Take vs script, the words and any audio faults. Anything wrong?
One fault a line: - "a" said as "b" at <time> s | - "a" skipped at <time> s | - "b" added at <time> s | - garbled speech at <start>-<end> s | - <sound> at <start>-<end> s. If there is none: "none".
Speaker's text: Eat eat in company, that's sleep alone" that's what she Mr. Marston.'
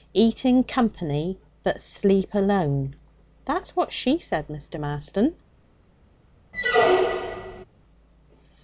- "eat" skipped at 0.5 s
- "that's" said as "but" at 1.6 s
- "said" added at 4.2 s
- squeak at 6.5-7.6 s